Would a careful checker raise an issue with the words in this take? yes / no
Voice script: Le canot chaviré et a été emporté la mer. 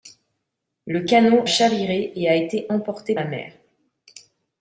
no